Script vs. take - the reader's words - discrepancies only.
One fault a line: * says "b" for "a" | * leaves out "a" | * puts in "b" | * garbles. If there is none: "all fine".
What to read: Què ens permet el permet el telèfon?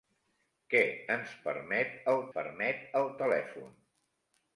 all fine